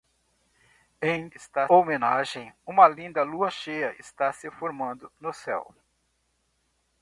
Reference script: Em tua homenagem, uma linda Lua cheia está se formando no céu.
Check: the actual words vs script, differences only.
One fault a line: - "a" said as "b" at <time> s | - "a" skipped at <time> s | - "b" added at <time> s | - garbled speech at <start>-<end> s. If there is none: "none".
- "tua" said as "está" at 1.4 s